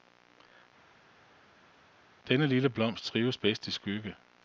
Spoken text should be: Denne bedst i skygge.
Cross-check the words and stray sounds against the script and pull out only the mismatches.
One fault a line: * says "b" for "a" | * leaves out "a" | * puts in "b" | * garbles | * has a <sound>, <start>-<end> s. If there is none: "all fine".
* puts in "lille blomst trives"